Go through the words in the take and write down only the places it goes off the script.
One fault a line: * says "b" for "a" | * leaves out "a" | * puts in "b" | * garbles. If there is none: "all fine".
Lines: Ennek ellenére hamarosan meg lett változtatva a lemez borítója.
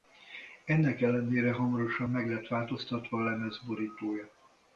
all fine